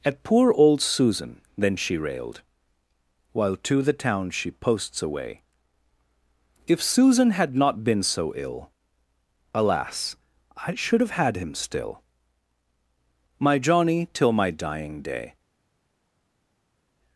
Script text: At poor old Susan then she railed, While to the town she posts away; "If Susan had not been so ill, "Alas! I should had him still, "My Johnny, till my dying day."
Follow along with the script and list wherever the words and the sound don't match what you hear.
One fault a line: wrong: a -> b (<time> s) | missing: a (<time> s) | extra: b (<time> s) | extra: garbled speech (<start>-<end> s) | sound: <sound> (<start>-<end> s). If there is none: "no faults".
extra: have (11.0 s)